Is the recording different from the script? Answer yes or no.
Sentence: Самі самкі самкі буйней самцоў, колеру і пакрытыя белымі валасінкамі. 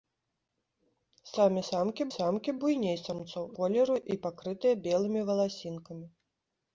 no